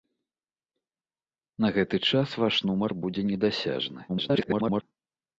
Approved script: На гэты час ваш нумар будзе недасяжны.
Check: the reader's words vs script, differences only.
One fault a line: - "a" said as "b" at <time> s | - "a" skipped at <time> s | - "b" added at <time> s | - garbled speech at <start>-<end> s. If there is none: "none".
- garbled speech at 4.1-4.8 s